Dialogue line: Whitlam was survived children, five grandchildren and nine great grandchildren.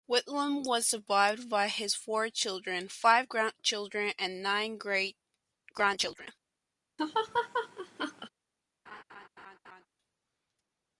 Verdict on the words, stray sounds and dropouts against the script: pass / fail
fail